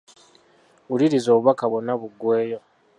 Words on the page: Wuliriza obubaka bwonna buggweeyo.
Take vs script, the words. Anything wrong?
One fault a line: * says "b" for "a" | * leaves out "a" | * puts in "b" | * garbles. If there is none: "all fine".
all fine